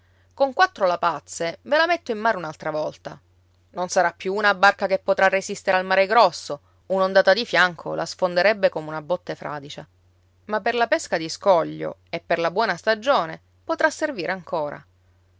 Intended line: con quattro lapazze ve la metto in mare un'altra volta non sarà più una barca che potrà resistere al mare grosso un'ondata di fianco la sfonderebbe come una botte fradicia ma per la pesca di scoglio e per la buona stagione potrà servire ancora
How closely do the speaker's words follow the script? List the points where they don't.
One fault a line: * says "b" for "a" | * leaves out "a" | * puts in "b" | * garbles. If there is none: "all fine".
all fine